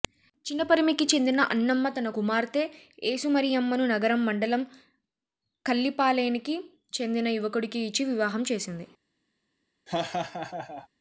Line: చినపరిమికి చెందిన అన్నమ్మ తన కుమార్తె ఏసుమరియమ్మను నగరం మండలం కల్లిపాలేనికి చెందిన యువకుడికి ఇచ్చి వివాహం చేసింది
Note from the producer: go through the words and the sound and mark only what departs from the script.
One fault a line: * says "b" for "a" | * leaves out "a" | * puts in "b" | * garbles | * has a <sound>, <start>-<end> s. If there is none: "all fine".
* has a laugh, 9.9-10.9 s